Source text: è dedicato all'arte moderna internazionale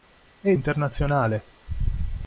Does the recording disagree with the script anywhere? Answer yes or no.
yes